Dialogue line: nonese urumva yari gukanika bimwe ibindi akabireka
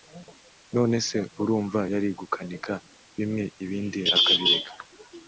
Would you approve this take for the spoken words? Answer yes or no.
yes